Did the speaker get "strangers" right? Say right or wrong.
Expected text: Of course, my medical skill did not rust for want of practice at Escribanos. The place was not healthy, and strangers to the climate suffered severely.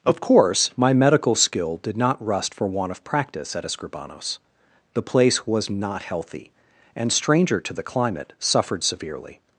wrong